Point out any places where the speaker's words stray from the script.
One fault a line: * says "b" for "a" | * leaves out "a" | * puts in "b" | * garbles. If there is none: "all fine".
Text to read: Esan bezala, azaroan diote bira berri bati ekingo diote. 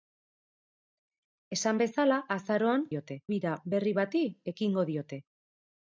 all fine